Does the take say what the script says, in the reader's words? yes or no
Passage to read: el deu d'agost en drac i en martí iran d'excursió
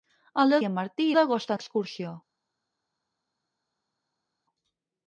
no